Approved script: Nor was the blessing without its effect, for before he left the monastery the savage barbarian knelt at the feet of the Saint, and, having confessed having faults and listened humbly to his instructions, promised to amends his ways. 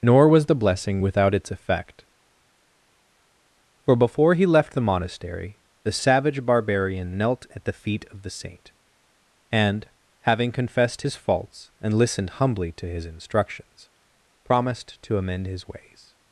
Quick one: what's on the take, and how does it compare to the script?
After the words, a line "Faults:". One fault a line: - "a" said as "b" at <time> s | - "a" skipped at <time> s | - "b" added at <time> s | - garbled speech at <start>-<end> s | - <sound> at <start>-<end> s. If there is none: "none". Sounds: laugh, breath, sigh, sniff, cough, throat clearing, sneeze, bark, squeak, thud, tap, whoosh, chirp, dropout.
Nor was the blessing without its effect, for before he left the monastery the savage barbarian knelt at the feet of the Saint, and, having confessed his faults and listened humbly to his instructions, promised to amend his ways.
Faults:
- "having" said as "his" at 11.0 s
- "amends" said as "amend" at 15.2 s